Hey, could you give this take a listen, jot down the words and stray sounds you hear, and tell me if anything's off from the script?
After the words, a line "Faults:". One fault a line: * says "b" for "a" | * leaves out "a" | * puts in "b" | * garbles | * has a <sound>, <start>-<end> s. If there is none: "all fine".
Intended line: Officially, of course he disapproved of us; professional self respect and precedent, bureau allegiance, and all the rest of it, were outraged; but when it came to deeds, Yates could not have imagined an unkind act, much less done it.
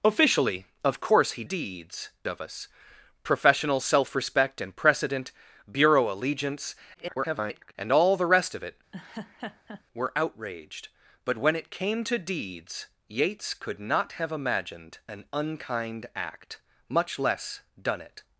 Officially, of course he deeds of us; professional self respect and precedent, bureau allegiance, [garbled] and all the rest of it, were outraged; but when it came to deeds, Yates could not have imagined an unkind act, much less done it.
Faults:
* says "deeds" for "disapproved"
* garbles
* has a laugh, 8.9-9.8 s